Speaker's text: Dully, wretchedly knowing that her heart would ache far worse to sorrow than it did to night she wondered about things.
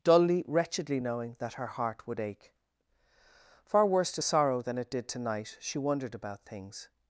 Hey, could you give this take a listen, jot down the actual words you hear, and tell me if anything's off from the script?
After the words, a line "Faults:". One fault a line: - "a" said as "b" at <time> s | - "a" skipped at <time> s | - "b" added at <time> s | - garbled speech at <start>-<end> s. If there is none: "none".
Dully, wretchedly knowing that her heart would ache far worse to sorrow than it did to night she wondered about things.
Faults:
none